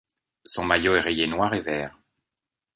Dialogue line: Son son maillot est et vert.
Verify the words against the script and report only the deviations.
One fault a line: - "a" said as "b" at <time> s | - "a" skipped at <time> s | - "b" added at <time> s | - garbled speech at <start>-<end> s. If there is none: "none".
- "son" skipped at 0.7 s
- "rayé noir" added at 1.0 s